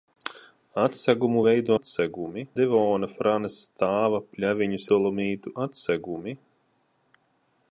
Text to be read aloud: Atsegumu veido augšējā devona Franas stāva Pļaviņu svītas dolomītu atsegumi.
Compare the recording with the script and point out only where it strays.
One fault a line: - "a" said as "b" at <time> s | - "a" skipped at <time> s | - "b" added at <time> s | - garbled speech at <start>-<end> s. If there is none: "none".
- "augšējā" said as "atsegumi" at 1.8 s
- "svītas" skipped at 4.8 s